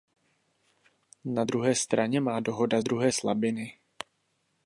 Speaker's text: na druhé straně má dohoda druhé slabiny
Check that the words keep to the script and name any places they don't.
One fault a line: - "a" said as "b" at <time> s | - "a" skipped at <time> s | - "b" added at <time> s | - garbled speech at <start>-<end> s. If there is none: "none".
none